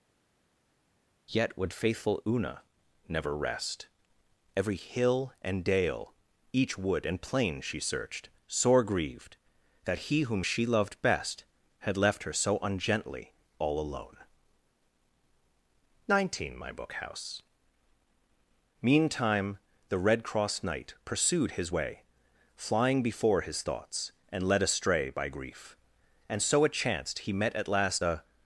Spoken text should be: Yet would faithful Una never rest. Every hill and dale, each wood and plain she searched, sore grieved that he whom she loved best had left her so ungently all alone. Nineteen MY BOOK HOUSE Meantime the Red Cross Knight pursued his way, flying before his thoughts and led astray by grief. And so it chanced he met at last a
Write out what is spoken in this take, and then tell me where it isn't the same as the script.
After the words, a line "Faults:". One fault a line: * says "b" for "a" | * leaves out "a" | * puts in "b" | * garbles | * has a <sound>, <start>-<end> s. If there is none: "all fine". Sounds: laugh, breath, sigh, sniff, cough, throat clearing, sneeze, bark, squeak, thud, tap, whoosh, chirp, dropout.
Yet would faithful Una never rest. Every hill and dale, each wood and plain she searched, sore grieved that he whom she loved best had left her so ungently all alone. Nineteen MY BOOK HOUSE Meantime the Red Cross Knight pursued his way, flying before his thoughts and led astray by grief. And so it chanced he met at last a
Faults:
all fine